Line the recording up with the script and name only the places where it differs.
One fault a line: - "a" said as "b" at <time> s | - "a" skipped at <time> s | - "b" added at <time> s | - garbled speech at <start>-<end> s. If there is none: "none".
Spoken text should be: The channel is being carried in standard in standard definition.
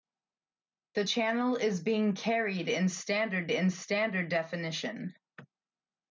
none